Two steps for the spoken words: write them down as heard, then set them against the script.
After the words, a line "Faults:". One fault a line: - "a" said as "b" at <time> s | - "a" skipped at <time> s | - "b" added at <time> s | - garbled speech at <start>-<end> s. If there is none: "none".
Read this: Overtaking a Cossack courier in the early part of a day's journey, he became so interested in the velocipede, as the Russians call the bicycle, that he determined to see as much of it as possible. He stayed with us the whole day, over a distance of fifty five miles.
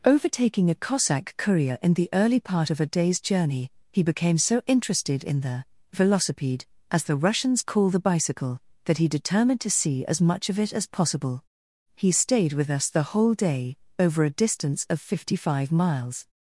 Overtaking a Cossack courier in the early part of a day's journey, he became so interested in the velocipede, as the Russians call the bicycle, that he determined to see as much of it as possible. He stayed with us the whole day, over a distance of fifty five miles.
Faults:
none